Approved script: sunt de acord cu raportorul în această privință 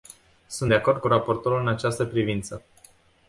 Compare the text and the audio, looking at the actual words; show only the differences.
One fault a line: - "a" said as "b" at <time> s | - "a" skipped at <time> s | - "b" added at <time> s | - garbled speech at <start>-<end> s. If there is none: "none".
none